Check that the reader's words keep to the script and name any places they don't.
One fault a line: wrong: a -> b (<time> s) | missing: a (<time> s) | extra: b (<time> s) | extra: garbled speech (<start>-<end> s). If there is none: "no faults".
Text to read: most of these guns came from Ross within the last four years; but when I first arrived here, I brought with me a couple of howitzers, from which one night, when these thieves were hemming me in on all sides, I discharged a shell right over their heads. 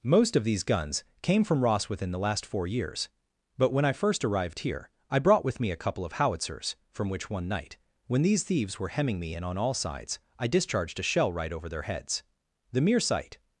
extra: The mere sight (12.7 s)